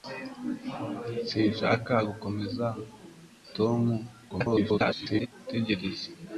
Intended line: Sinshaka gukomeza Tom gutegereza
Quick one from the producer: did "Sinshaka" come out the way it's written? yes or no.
yes